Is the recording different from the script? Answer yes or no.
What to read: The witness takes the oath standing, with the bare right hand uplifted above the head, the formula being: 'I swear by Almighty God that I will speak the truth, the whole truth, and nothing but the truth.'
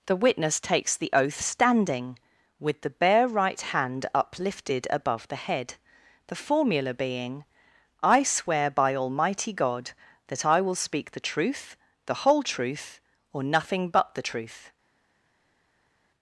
yes